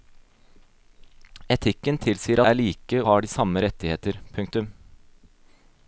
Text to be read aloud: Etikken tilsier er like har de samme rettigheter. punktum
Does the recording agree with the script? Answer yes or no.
yes